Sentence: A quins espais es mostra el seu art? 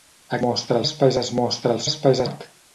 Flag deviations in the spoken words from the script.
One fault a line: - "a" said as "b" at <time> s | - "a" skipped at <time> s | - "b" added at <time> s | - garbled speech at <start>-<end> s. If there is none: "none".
- "quins" said as "mostra" at 0.5 s
- "seu" said as "espais" at 1.9 s